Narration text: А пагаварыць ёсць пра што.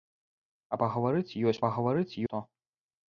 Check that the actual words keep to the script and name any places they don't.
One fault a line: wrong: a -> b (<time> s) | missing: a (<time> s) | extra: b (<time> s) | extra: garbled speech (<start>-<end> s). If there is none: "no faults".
wrong: пра -> пагаварыць (1.6 s)